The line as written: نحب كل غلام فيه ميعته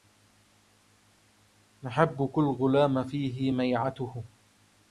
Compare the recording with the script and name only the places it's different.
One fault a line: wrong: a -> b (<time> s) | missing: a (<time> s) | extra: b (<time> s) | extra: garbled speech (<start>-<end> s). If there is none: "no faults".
no faults